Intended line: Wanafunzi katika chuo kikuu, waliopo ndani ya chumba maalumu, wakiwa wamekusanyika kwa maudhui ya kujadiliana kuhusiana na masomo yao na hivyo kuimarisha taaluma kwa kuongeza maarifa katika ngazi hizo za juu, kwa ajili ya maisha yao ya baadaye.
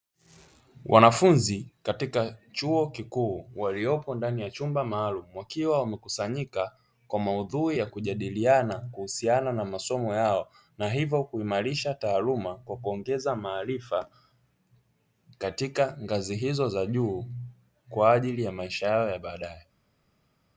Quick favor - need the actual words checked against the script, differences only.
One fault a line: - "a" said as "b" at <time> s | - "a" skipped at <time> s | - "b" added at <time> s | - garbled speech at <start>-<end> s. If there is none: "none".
none